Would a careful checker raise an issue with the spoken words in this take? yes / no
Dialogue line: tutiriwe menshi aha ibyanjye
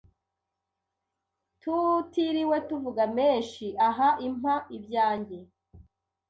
yes